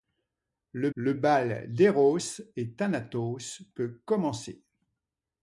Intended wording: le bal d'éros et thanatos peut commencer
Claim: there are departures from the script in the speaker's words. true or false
true